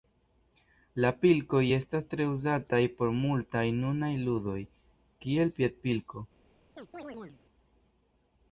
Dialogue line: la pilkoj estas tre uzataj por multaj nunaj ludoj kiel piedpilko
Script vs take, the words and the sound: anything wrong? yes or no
yes